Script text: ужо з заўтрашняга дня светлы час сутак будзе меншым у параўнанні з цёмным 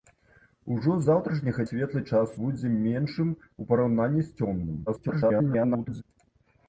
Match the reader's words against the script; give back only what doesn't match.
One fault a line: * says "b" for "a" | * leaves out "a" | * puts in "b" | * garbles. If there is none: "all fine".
* leaves out "дня"
* leaves out "сутак"
* garbles